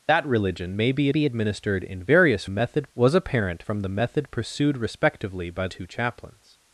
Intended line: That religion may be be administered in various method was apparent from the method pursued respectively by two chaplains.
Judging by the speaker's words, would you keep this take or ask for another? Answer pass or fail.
pass